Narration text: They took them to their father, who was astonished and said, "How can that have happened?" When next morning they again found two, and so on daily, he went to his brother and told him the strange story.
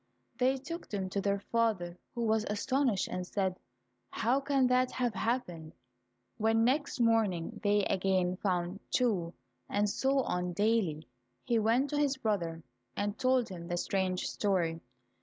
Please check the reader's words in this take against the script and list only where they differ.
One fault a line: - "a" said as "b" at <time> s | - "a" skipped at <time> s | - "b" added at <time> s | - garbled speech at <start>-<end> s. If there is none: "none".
none